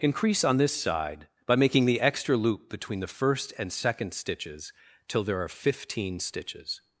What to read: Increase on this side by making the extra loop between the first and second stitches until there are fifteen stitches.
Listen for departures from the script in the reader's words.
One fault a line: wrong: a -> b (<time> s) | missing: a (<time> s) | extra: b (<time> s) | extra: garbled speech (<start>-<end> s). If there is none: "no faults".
wrong: until -> till (5.1 s)